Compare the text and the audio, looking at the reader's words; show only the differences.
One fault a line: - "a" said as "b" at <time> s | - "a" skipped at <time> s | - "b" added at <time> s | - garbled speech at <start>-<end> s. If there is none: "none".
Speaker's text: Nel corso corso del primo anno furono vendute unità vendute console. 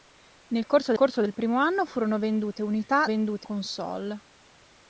none